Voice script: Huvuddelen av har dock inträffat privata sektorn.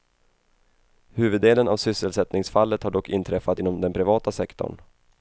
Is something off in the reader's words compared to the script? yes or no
yes